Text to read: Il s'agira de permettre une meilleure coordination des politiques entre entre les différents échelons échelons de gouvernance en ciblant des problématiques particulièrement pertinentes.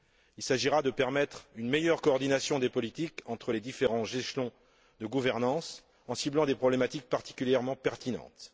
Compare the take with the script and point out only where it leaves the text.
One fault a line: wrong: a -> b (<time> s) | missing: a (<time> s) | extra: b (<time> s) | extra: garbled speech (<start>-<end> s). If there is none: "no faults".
missing: entre (3.5 s)
missing: échelons (4.5 s)